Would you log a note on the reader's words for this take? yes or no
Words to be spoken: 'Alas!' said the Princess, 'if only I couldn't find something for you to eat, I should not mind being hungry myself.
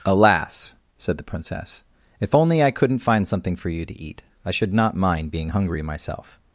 no